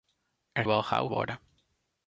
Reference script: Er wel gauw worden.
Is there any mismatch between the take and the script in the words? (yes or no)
no